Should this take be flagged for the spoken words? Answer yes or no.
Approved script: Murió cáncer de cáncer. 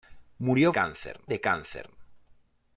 no